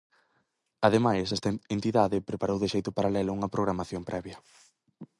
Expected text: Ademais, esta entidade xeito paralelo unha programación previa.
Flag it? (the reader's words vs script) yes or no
yes